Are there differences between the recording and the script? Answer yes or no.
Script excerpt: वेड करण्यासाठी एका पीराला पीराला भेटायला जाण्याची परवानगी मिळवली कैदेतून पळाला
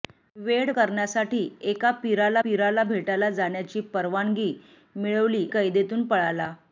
no